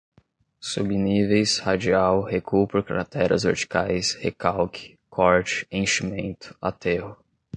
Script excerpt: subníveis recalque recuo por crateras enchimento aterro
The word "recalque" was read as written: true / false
false